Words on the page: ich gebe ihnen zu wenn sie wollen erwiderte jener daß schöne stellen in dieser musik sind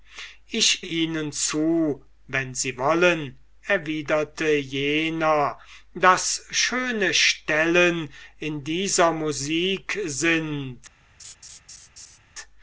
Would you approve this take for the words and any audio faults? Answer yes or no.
no